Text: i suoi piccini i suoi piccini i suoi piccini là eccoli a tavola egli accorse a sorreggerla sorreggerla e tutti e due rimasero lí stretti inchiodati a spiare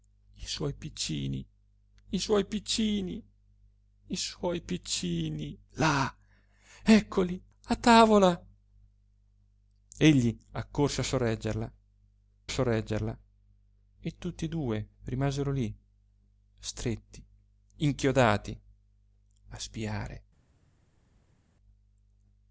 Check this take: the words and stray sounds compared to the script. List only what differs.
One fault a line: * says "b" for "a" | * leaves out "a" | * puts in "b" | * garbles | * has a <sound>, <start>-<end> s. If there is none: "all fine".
all fine